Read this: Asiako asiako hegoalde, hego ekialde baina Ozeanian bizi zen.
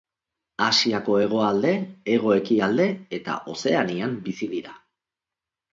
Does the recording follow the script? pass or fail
fail